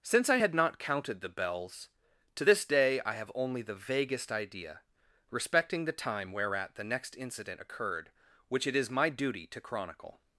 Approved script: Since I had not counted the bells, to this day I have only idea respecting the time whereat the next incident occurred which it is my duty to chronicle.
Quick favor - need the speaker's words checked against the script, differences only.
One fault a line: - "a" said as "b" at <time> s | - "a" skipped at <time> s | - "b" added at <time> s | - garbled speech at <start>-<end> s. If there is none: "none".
- "the vaguest" added at 3.6 s